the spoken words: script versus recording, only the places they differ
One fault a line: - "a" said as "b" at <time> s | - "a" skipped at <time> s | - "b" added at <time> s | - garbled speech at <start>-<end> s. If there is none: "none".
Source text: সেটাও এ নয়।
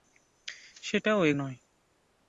none